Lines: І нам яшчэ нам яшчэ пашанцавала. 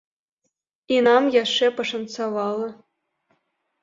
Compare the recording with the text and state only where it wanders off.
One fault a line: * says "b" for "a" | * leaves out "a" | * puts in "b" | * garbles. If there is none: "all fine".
* leaves out "нам яшчэ"